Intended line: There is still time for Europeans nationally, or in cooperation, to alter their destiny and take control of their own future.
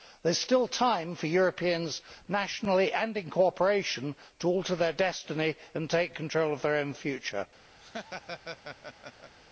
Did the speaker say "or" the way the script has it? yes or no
no